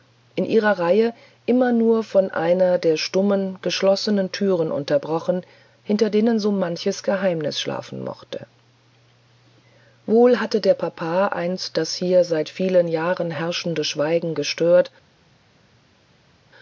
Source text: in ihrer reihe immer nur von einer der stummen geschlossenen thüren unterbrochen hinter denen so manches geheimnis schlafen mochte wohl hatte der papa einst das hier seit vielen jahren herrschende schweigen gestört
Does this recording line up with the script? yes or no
yes